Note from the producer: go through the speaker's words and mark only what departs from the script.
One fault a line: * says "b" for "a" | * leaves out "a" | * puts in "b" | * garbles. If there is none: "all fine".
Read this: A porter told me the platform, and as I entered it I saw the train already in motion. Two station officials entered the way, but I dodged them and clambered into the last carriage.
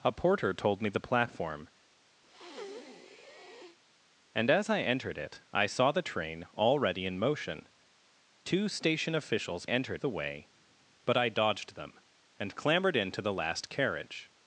all fine